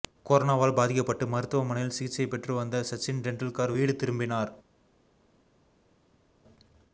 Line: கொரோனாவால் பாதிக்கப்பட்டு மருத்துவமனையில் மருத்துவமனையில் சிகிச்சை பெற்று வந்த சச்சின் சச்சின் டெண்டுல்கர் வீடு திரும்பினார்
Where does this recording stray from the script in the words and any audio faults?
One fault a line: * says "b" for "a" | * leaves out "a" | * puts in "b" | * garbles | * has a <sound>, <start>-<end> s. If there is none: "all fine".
* leaves out "மருத்துவமனையில்"
* leaves out "சச்சின்"